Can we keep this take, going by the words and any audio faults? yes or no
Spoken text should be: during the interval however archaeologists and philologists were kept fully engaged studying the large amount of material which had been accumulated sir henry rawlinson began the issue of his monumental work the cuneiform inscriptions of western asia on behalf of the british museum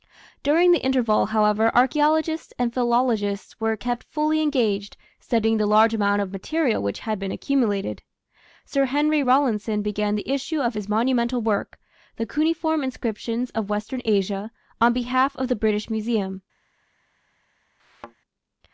no